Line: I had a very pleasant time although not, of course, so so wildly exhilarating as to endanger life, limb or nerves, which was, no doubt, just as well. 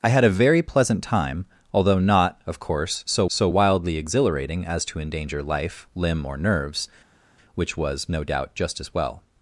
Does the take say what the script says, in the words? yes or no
yes